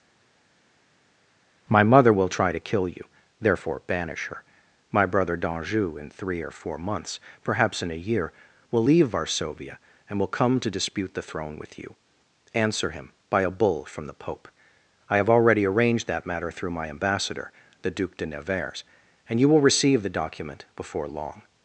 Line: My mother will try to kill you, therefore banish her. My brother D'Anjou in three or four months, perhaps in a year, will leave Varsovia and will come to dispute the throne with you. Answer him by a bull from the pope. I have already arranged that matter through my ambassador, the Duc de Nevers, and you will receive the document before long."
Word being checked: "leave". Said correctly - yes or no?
yes